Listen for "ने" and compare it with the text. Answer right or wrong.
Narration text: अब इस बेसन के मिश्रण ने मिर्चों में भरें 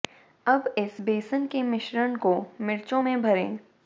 wrong